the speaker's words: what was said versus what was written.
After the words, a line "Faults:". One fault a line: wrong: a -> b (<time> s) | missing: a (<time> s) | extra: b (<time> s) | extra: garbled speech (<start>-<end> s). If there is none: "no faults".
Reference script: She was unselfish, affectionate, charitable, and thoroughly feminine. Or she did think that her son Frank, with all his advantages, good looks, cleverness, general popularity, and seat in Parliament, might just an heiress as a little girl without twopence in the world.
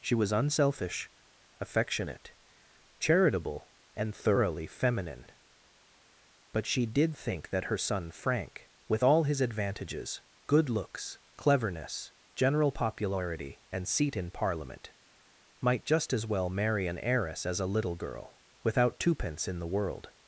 She was unselfish, affectionate, charitable, and thoroughly feminine. But she did think that her son Frank, with all his advantages, good looks, cleverness, general popularity, and seat in Parliament, might just as well marry an heiress as a little girl without twopence in the world.
Faults:
wrong: Or -> But (6.5 s)
extra: as well marry (16.1 s)